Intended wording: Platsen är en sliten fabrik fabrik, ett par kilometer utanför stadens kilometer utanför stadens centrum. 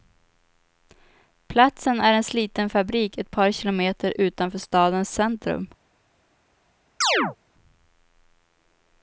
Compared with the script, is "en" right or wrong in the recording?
right